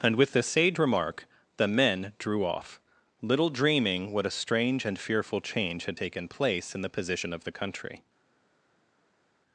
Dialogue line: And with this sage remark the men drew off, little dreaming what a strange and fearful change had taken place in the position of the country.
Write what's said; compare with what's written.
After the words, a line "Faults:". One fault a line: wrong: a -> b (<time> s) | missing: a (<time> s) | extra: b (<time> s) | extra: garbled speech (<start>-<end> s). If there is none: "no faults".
And with this sage remark the men drew off, little dreaming what a strange and fearful change had taken place in the position of the country.
Faults:
no faults